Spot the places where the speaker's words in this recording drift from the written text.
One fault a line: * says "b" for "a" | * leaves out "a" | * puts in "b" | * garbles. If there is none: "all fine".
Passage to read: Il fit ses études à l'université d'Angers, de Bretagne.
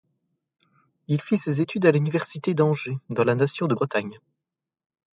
* puts in "dans la nation"